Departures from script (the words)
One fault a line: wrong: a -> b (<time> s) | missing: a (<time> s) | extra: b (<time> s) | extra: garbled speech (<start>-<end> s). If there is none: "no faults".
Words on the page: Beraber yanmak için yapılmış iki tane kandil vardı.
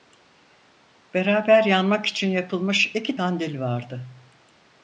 missing: tane (3.2 s)